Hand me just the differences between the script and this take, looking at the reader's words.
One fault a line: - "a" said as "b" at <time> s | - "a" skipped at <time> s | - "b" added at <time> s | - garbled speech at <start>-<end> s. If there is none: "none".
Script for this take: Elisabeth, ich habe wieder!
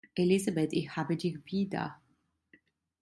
- "dich" added at 1.1 s